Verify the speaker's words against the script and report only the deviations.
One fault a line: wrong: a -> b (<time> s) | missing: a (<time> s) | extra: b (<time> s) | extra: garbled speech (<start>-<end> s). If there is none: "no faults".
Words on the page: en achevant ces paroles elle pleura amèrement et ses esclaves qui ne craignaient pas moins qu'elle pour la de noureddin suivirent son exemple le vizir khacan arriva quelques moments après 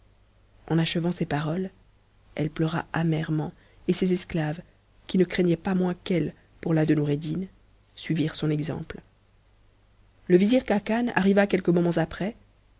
no faults